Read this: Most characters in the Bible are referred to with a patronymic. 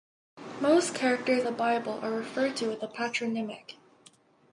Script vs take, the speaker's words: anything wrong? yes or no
yes